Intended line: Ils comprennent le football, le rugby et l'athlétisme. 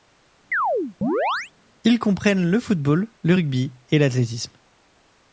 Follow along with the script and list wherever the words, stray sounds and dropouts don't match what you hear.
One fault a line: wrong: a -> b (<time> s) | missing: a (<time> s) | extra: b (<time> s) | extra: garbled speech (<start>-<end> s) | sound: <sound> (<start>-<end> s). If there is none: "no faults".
sound: chirp (0.5-1.5 s)